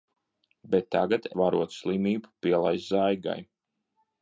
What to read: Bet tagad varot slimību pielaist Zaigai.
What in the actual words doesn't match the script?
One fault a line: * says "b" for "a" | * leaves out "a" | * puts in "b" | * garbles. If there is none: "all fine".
all fine